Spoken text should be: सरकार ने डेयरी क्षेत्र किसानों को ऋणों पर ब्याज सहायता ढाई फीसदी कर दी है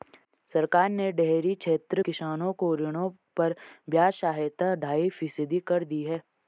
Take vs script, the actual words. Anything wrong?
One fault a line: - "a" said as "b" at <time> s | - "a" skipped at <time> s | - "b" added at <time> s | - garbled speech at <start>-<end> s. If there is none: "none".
none